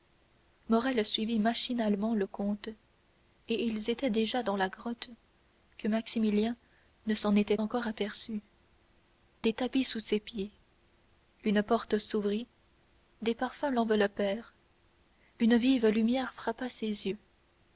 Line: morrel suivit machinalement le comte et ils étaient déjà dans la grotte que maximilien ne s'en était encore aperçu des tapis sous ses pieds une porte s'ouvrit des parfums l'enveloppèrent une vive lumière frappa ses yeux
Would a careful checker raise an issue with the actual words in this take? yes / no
no